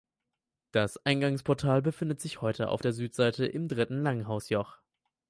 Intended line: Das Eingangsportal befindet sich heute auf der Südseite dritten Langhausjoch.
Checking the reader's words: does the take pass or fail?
fail